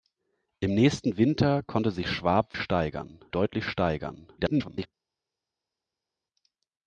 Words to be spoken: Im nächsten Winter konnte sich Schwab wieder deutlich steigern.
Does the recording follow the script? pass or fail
fail